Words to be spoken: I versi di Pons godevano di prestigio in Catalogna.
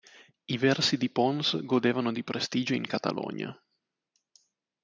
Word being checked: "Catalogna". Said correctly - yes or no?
yes